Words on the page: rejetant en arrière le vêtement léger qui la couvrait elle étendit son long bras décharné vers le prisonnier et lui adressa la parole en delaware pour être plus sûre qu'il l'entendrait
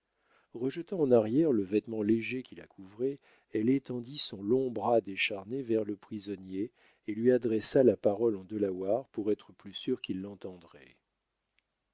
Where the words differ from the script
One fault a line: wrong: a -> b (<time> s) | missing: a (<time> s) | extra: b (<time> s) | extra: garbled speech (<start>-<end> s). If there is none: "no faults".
no faults